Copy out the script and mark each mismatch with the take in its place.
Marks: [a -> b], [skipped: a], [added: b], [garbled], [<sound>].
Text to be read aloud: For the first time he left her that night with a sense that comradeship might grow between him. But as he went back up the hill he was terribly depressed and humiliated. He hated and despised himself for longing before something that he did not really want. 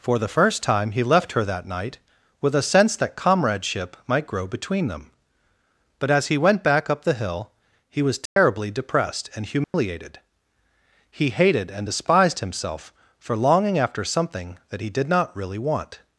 For the first time he left her that night with a sense that comradeship might grow between [him. -> them] But as he went back up the hill he was terribly [dropout] depressed and humiliated. [dropout] He hated and despised himself for longing [before -> after] something that he did not really want.